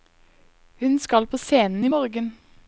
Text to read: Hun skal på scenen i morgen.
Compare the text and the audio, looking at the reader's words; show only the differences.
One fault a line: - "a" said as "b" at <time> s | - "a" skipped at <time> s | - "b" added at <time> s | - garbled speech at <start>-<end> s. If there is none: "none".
none